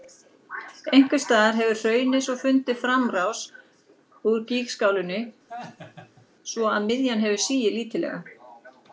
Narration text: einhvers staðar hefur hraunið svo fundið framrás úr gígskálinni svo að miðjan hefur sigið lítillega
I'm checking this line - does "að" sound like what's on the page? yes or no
yes